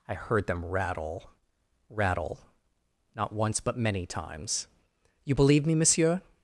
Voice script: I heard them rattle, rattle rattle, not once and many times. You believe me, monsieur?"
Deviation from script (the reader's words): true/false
true